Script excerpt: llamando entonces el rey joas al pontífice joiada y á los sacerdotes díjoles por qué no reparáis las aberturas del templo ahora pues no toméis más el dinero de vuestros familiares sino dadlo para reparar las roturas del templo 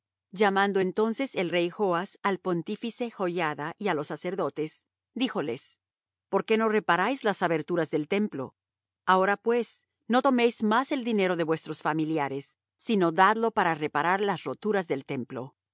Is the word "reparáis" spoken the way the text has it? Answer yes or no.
yes